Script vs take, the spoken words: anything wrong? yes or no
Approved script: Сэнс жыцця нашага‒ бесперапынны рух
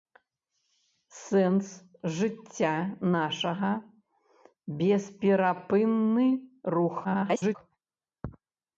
yes